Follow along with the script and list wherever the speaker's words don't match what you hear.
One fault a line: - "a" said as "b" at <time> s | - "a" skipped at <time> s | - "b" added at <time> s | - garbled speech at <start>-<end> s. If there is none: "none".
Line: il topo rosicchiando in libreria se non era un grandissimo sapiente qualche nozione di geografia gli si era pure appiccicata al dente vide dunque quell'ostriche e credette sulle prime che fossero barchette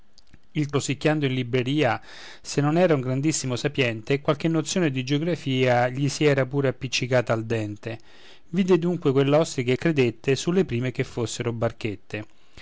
- "topo" skipped at 0.7 s